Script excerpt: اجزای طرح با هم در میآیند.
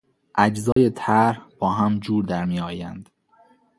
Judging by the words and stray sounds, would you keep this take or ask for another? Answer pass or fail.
fail